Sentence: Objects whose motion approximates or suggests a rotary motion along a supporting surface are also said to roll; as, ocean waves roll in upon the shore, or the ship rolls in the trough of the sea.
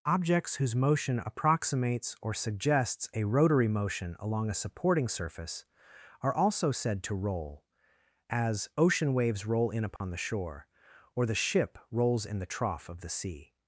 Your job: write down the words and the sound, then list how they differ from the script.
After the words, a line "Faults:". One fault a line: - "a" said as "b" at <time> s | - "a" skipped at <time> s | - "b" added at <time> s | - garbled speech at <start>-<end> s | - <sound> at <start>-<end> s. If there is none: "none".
Objects whose motion approximates or suggests a rotary motion along a supporting surface are also said to roll; as, ocean waves roll in upon the shore, or the ship rolls in the trough of the sea.
Faults:
- dropout at 10.0-10.0 s